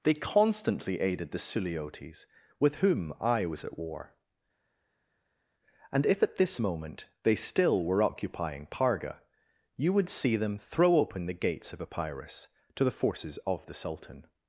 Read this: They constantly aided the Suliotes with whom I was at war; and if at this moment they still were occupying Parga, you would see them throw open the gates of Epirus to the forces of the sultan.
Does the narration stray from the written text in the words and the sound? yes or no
no